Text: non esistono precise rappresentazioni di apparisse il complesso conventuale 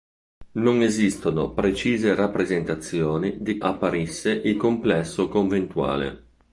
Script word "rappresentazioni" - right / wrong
right